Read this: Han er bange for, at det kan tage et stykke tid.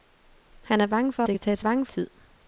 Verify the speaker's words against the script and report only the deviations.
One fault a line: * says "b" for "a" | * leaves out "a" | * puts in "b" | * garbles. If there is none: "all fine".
* leaves out "at"
* says "bange" for "stykke"